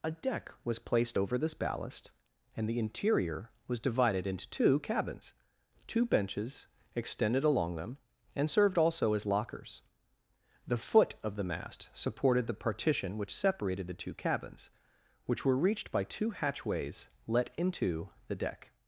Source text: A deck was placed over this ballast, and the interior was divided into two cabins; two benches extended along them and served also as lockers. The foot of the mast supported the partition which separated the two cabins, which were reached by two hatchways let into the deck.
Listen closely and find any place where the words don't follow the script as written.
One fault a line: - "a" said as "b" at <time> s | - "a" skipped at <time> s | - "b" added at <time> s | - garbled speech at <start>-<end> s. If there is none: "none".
none